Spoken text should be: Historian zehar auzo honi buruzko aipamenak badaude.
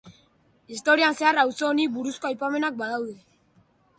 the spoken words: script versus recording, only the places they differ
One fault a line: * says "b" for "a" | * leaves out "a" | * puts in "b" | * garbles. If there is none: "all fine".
all fine